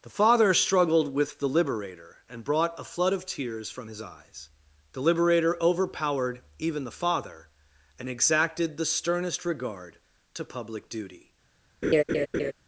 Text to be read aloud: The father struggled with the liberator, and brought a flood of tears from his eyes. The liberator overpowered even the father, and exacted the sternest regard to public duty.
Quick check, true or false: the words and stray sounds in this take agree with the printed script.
false